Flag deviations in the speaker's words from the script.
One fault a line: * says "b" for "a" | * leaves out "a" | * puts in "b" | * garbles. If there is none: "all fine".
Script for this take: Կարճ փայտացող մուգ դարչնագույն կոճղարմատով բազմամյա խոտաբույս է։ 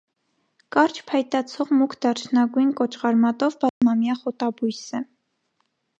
all fine